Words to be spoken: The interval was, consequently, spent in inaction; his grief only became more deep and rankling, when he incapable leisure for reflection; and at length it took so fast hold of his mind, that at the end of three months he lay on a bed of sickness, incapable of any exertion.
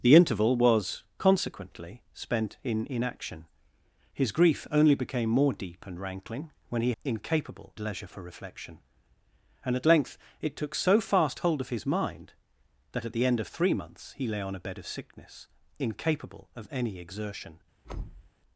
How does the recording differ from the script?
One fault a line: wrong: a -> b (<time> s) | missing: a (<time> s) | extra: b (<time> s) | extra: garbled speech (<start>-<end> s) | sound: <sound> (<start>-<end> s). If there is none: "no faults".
sound: thud (17.8-18.3 s)